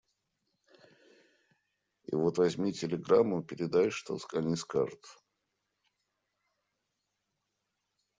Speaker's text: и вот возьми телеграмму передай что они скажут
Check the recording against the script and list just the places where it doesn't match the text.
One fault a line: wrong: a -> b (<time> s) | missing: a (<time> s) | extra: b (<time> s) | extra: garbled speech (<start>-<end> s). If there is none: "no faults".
no faults